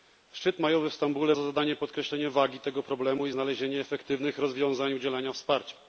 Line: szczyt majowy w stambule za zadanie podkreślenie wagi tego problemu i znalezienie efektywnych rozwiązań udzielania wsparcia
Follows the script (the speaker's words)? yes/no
yes